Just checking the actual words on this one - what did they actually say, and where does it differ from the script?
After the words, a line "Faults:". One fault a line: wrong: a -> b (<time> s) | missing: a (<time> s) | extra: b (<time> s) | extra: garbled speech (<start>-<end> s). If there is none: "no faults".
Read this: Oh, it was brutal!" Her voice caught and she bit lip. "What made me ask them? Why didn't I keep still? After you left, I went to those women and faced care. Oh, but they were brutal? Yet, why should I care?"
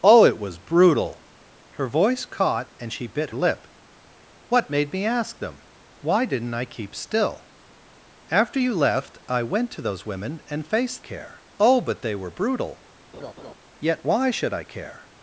Oh, it was brutal!" Her voice caught and she bit lip. "What made me ask them? Why didn't I keep still? After you left, I went to those women and faced care. Oh, but they were brutal? Yet, why should I care?"
Faults:
no faults